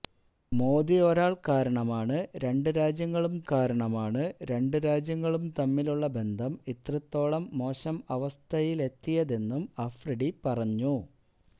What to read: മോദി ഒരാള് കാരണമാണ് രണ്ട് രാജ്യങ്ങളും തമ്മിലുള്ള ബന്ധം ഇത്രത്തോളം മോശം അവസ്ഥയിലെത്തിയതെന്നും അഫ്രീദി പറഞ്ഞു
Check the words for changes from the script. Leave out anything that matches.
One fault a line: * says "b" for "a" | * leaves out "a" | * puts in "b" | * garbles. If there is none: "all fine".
* puts in "കാരണമാണ് രണ്ട് രാജ്യങ്ങളും"